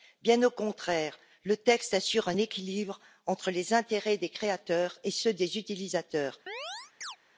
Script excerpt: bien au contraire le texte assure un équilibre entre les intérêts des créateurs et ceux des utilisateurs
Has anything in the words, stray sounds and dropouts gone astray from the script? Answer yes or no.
yes